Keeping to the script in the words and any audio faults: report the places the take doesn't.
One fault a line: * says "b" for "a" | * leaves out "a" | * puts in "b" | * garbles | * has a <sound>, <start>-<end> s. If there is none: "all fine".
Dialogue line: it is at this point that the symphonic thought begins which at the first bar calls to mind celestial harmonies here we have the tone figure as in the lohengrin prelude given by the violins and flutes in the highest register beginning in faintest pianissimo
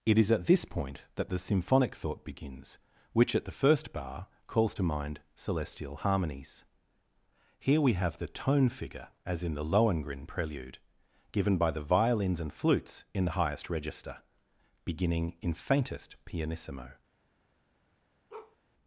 * has a bark, 18.3-18.6 s